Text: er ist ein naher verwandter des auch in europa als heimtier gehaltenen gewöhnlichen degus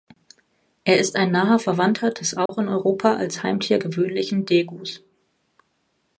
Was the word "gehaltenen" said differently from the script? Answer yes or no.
yes